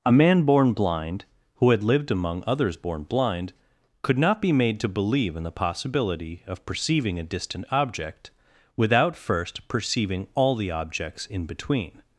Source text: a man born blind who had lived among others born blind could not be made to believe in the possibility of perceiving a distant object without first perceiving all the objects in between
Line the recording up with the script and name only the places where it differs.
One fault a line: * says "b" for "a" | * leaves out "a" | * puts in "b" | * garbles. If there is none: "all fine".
all fine